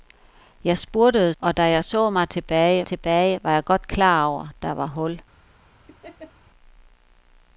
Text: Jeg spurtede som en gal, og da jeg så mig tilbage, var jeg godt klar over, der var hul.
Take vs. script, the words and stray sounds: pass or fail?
fail